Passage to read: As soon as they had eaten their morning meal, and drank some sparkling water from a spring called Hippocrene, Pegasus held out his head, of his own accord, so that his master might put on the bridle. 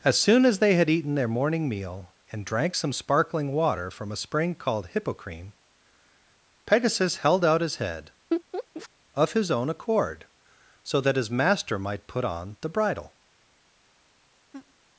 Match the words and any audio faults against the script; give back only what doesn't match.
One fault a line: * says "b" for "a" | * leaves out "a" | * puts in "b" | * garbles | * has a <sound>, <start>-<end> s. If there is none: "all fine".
* has a laugh, 8.3-8.9 s
* has a laugh, 14.5-14.7 s